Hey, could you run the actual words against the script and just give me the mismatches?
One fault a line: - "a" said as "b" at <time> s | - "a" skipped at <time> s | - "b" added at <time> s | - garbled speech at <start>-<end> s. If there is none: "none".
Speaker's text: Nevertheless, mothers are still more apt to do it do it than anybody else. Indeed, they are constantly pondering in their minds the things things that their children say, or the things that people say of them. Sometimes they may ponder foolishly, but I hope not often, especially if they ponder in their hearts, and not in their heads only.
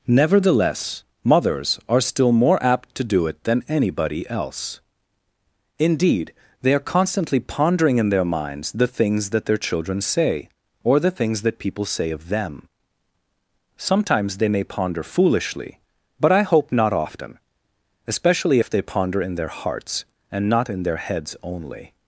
- "do it" skipped at 3.4 s
- "things" skipped at 9.3 s